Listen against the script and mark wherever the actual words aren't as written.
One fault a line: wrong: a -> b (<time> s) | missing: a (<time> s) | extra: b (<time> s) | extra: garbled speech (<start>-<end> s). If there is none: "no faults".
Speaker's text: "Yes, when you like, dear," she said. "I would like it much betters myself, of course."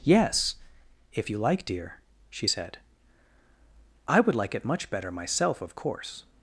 wrong: when -> if (1.1 s)
wrong: betters -> better (4.9 s)